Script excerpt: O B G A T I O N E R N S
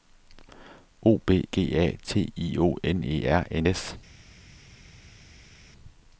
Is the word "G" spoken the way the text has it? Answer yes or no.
yes